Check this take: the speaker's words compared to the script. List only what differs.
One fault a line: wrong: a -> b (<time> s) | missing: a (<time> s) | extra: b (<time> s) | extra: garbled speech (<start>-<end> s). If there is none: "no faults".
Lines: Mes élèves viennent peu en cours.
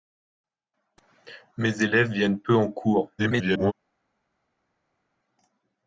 extra: garbled speech (3.2-3.7 s)